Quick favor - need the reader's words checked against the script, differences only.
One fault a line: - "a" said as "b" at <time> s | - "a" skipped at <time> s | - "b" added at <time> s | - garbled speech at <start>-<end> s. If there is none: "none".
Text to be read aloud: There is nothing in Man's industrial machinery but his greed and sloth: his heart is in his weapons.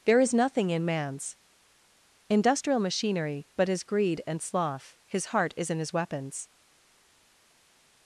none